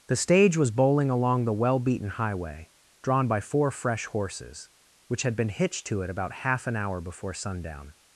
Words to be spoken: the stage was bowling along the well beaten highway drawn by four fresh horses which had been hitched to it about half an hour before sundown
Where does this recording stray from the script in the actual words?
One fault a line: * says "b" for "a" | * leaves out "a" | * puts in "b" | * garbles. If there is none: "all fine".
all fine